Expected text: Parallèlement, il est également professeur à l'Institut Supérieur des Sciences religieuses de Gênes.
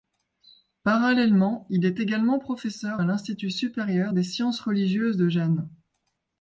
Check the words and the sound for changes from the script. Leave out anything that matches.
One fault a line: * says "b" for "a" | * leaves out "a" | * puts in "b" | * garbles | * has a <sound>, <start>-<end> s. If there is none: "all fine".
all fine